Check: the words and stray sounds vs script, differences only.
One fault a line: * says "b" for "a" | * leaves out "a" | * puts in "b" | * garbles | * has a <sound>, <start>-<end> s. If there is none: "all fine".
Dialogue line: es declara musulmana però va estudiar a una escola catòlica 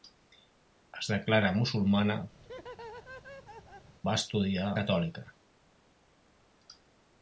* leaves out "però"
* has a laugh, 2.4-4.0 s
* leaves out "a una escola"